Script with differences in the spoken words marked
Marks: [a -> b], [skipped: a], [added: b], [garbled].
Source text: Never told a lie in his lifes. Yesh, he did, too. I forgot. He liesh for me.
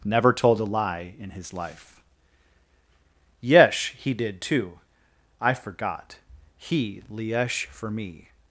Never told a lie in his [lifes. -> life] Yesh, he did, too. I forgot. He liesh for me.